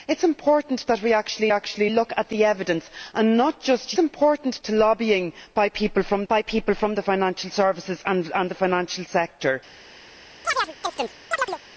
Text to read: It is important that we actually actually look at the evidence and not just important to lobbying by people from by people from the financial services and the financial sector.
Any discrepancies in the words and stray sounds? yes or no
yes